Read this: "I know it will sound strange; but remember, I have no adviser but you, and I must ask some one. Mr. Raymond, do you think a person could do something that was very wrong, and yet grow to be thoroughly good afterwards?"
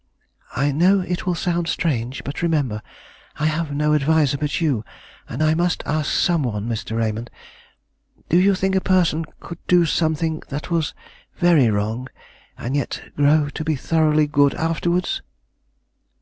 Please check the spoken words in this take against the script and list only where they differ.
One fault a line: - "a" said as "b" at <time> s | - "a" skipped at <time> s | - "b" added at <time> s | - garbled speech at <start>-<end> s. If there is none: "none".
none